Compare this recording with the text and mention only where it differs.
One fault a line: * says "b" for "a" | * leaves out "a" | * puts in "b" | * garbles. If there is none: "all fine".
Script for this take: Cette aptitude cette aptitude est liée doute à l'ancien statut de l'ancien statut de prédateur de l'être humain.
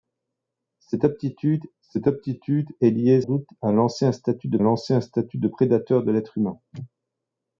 all fine